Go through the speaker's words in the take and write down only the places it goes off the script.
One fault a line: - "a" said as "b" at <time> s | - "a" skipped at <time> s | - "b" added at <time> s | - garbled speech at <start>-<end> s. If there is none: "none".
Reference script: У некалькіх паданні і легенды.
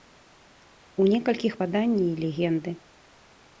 none